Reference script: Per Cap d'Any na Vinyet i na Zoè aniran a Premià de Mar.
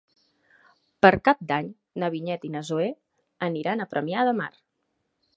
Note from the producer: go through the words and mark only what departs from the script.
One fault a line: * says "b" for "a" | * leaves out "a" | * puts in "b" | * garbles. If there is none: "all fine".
all fine